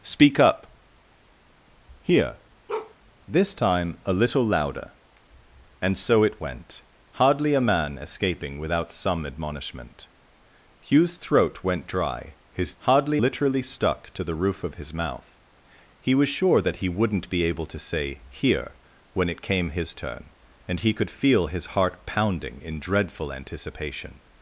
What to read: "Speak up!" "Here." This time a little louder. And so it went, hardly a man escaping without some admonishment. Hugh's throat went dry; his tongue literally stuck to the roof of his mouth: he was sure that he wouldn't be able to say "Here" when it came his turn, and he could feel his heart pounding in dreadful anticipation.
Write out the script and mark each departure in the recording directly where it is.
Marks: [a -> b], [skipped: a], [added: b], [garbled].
"Speak up!" "Here." This time a little louder. And so it went, hardly a man escaping without some admonishment. Hugh's throat went dry; his [tongue -> hardly] literally stuck to the roof of his mouth: he was sure that he wouldn't be able to say "Here" when it came his turn, and he could feel his heart pounding in dreadful anticipation.